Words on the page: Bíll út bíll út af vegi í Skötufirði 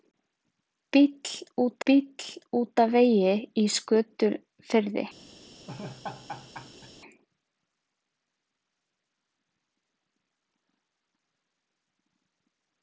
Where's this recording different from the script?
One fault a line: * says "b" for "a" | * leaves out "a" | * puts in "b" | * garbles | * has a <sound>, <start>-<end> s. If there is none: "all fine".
* has a laugh, 5.7-6.9 s